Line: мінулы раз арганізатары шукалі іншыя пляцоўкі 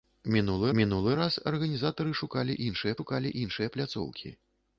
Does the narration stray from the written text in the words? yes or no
yes